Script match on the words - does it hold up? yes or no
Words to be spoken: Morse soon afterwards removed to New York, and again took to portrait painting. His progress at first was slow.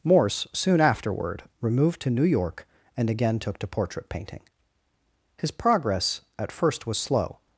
no